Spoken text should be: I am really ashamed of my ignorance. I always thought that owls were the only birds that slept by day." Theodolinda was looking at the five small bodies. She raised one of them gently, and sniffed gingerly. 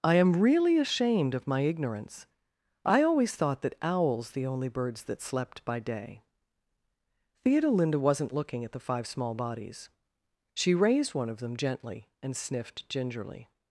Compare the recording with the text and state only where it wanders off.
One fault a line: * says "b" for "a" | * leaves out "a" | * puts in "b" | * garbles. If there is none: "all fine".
* leaves out "were"
* says "wasn't" for "was"